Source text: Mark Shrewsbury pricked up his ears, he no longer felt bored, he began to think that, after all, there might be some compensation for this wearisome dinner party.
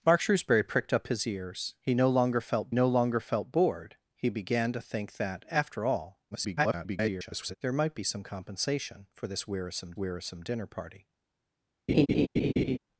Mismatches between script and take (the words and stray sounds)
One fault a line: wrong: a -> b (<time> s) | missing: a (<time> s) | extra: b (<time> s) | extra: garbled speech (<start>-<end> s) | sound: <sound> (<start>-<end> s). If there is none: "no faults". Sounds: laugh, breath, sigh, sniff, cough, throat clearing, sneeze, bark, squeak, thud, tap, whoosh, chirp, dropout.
extra: no longer felt (2.7 s)
extra: garbled speech (6.3-7.6 s)
extra: wearisome (10.0 s)
sound: laugh (11.9-12.8 s)